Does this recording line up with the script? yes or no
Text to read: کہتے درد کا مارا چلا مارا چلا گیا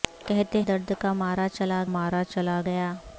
yes